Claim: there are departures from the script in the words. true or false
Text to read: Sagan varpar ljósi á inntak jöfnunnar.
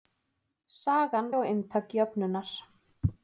true